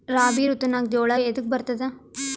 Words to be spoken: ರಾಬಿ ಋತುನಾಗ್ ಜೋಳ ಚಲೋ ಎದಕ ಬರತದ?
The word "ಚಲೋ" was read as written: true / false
false